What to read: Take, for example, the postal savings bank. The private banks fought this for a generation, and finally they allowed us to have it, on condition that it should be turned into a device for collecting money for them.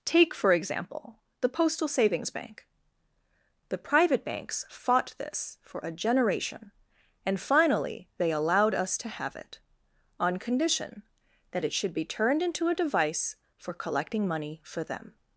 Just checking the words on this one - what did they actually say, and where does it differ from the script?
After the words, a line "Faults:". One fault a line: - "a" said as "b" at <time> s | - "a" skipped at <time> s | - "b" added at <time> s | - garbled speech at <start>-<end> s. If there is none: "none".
Take, for example, the postal savings bank. The private banks fought this for a generation, and finally they allowed us to have it, on condition that it should be turned into a device for collecting money for them.
Faults:
none